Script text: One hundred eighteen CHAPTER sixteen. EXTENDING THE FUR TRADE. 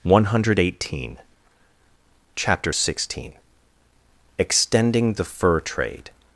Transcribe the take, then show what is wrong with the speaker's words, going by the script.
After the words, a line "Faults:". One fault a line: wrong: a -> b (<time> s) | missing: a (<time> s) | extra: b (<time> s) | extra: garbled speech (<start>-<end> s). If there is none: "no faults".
One hundred eighteen CHAPTER sixteen. EXTENDING THE FUR TRADE.
Faults:
no faults